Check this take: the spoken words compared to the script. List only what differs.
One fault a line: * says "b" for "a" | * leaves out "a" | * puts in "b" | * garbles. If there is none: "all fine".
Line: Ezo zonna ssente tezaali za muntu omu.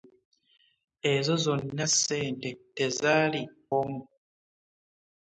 * leaves out "za muntu"